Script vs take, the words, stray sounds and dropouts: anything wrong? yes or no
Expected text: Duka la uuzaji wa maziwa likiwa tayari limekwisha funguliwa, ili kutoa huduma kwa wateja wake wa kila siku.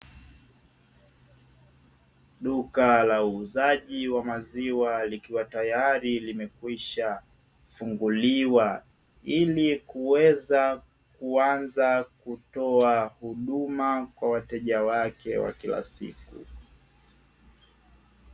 yes